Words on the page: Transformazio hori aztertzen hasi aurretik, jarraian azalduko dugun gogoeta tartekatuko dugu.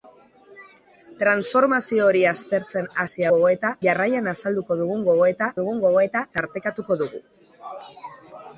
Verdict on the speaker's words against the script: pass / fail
fail